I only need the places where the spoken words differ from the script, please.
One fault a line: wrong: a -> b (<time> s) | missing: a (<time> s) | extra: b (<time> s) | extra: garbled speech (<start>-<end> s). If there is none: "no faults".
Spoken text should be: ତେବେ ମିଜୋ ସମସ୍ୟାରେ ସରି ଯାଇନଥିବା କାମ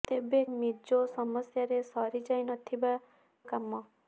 no faults